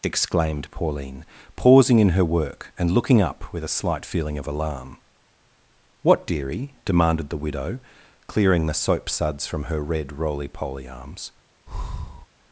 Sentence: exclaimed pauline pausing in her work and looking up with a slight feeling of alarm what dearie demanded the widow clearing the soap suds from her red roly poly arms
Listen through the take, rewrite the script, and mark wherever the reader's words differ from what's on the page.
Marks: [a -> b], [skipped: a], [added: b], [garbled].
exclaimed pauline pausing in her work and looking up with a slight feeling of alarm what dearie demanded the widow clearing the soap suds from her red roly poly arms